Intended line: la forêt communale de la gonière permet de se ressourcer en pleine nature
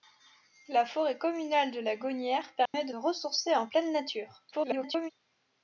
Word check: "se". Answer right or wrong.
wrong